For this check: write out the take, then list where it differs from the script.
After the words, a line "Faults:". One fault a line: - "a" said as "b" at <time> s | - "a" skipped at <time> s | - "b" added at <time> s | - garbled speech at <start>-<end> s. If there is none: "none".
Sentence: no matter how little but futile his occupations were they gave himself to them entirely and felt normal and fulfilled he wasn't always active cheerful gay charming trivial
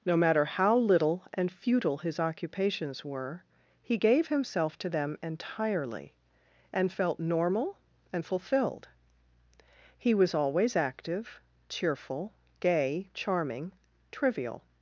no matter how little and futile his occupations were he gave himself to them entirely and felt normal and fulfilled he was always active cheerful gay charming trivial
Faults:
- "but" said as "and" at 1.3 s
- "they" said as "he" at 3.8 s
- "wasn't" said as "was" at 10.1 s